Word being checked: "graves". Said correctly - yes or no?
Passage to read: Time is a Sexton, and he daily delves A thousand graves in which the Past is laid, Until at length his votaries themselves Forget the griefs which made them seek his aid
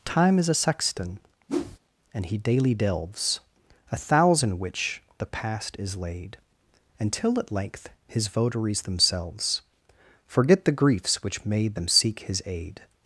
no